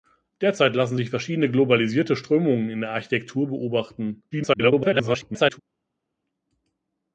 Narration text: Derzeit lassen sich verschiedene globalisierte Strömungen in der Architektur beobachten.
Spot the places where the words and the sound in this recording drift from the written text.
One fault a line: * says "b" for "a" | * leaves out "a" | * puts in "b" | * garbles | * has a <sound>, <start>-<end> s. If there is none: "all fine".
* garbles